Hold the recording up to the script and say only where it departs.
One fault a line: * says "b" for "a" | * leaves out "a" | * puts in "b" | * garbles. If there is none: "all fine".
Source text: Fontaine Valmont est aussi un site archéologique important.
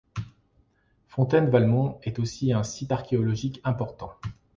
all fine